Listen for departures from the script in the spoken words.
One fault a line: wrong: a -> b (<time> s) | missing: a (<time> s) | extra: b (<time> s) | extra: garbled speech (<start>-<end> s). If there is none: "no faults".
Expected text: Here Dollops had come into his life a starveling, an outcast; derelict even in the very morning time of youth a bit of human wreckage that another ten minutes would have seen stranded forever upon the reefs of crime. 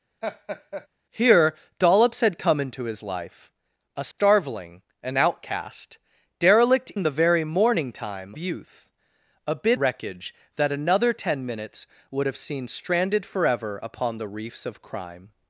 missing: even (6.9 s)
missing: of (8.4 s)
missing: of human (9.8 s)